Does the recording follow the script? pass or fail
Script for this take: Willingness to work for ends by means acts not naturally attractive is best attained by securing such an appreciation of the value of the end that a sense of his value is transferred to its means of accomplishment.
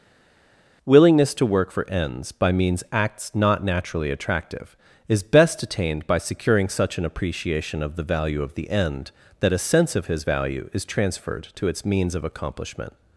pass